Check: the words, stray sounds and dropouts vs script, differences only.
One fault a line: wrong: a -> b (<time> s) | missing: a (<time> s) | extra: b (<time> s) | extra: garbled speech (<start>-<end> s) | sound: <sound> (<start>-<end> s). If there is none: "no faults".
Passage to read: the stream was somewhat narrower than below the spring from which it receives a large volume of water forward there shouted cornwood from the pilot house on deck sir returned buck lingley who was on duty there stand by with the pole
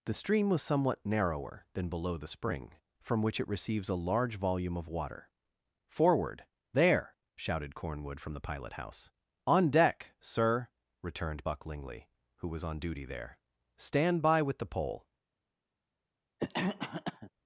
sound: cough (16.4-17.3 s)